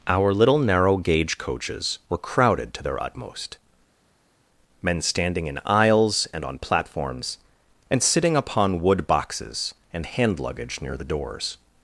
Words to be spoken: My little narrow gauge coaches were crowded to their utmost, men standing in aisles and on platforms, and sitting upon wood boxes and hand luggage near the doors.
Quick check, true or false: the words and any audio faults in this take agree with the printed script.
false